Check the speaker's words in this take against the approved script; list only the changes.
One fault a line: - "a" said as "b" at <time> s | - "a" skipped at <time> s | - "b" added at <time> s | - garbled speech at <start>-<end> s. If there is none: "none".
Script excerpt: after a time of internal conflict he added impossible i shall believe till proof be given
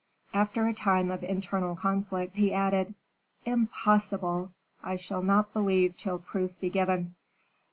- "not" added at 5.2 s